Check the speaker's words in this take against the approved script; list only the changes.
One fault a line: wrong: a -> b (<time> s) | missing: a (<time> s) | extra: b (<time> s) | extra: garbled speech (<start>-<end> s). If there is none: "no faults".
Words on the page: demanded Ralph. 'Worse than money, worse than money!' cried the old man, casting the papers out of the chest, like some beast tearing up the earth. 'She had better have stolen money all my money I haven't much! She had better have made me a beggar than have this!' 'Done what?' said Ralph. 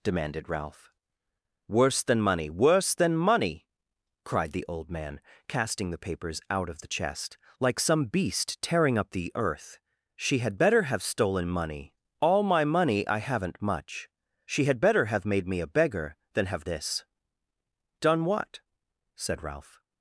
no faults